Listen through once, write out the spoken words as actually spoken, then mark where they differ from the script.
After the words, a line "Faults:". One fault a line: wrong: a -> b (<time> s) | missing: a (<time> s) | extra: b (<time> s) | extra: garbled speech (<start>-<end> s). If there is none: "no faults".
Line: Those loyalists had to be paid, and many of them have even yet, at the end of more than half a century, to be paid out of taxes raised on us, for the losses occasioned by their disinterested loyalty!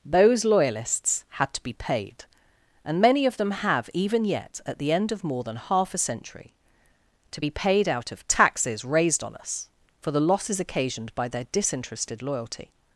Those loyalists had to be paid, and many of them have even yet, at the end of more than half a century, to be paid out of taxes raised on us, for the losses occasioned by their disinterested loyalty!
Faults:
no faults